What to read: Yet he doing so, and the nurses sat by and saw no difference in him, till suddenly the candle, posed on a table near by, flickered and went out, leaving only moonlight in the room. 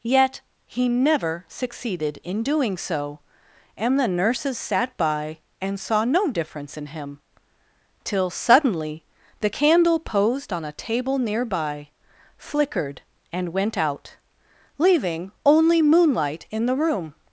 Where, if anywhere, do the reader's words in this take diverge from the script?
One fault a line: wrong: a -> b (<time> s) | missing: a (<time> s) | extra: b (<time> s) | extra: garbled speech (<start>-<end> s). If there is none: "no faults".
extra: never succeeded in (0.9 s)